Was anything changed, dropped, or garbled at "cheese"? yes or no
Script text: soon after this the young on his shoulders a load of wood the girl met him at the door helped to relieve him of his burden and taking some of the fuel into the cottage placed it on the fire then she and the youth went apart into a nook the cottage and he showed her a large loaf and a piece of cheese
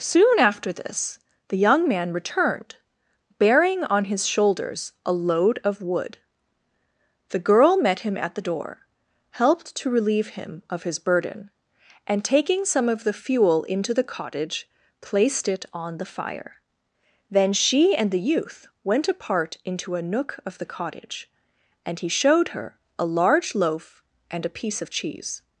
no